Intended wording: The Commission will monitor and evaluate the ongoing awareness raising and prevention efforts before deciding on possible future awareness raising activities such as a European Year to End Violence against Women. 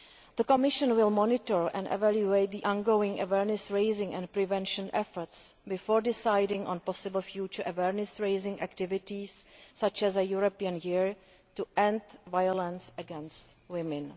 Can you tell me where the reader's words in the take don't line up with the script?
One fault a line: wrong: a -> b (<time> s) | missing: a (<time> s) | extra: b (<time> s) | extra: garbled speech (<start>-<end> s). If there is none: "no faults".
no faults